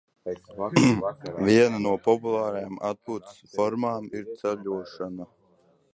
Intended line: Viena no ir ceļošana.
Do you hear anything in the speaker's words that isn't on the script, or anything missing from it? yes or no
yes